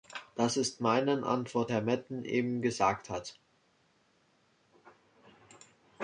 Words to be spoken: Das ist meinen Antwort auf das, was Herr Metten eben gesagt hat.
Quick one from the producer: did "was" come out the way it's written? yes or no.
no